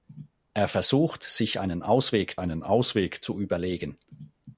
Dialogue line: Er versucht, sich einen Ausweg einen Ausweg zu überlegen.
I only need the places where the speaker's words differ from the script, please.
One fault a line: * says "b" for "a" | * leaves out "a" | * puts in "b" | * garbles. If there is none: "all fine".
all fine